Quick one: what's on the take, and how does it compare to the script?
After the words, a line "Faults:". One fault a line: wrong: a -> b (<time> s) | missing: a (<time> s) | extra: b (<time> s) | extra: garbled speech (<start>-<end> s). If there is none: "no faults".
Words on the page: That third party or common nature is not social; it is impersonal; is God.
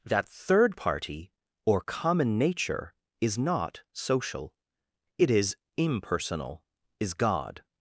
That third party or common nature is not social; it is impersonal; is God.
Faults:
no faults